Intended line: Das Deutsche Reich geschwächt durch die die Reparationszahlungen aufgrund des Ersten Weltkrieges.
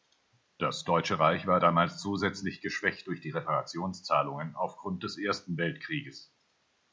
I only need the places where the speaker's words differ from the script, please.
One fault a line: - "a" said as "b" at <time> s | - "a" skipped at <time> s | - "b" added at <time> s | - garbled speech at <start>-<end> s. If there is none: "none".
- "war damals zusätzlich" added at 1.4 s
- "die" skipped at 3.3 s